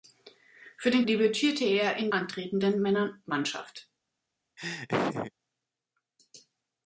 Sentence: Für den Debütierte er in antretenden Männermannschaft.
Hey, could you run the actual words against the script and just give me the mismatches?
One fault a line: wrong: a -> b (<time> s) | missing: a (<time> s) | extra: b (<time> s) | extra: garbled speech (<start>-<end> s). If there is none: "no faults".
no faults